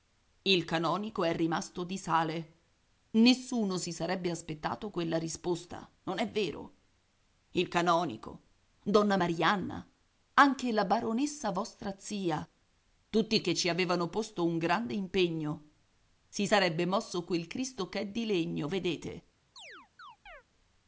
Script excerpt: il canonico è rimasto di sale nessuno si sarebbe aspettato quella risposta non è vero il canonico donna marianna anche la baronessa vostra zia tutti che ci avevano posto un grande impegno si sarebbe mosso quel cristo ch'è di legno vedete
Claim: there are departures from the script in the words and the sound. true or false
true